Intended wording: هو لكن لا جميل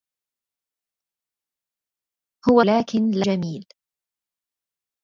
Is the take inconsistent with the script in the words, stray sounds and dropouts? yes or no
no